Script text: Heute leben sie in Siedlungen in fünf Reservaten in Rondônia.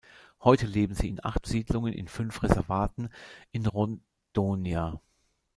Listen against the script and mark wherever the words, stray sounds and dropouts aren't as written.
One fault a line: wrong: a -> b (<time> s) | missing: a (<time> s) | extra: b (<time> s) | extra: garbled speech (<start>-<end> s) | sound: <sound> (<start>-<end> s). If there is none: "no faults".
extra: acht (1.2 s)